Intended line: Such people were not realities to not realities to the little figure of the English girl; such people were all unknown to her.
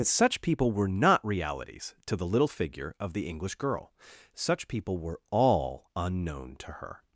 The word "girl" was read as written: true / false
true